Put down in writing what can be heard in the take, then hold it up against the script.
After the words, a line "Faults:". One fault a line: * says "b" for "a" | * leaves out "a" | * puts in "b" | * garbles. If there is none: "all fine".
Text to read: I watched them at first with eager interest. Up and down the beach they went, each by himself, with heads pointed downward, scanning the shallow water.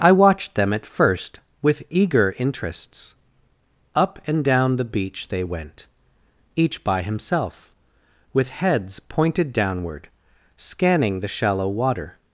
I watched them at first with eager interests. Up and down the beach they went, each by himself, with heads pointed downward, scanning the shallow water.
Faults:
* says "interests" for "interest"